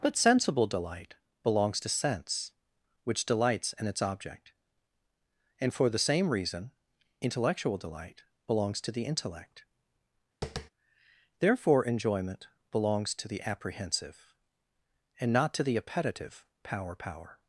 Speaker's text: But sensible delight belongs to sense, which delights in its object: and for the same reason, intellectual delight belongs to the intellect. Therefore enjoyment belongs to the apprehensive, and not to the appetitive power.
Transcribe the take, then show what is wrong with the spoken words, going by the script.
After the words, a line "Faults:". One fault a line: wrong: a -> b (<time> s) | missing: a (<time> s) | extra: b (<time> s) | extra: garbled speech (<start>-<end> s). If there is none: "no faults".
But sensible delight belongs to sense, which delights in its object: and for the same reason, intellectual delight belongs to the intellect. Therefore enjoyment belongs to the apprehensive, and not to the appetitive power power.
Faults:
extra: power (17.0 s)